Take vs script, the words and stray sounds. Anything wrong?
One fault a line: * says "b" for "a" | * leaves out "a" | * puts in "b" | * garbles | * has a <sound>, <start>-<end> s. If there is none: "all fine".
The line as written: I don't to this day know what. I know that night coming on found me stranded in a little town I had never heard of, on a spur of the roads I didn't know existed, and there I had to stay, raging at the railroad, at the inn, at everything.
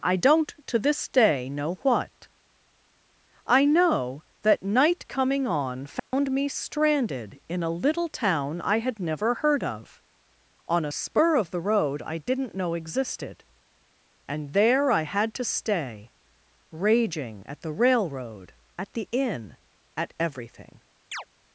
* has a dropout, 6.0-6.1 s
* says "road" for "roads"
* has a chirp, 21.1-21.2 s